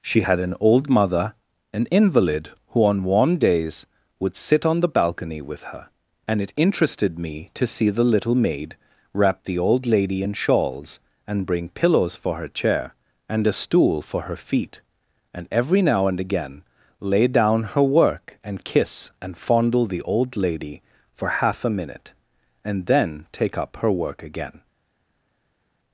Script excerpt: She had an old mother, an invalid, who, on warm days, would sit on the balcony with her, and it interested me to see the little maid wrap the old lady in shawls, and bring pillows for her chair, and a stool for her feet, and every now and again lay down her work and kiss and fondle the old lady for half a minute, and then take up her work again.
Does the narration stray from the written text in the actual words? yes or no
no